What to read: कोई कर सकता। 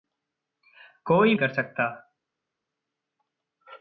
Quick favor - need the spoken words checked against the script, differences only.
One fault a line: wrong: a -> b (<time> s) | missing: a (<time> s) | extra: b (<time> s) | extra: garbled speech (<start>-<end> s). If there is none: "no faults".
no faults